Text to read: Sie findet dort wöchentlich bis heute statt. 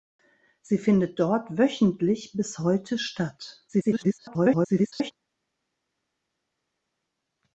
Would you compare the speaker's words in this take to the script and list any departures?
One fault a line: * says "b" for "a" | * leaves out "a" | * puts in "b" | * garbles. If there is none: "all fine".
* garbles